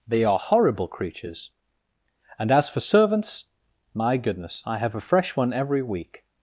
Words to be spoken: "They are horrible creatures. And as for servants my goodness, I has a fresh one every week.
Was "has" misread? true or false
true